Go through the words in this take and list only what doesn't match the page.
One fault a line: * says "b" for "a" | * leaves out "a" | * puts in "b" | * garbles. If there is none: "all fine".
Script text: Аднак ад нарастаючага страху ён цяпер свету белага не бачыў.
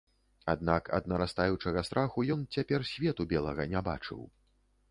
all fine